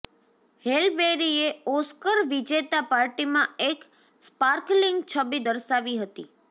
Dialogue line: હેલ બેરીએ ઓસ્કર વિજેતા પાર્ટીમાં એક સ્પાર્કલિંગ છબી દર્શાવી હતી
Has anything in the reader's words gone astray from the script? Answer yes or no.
no